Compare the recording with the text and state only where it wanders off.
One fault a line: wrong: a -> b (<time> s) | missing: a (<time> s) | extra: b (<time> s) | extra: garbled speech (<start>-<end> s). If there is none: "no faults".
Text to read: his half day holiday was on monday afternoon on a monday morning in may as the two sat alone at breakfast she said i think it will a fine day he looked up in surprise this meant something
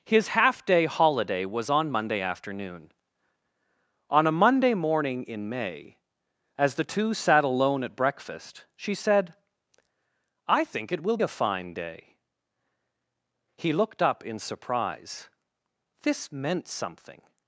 no faults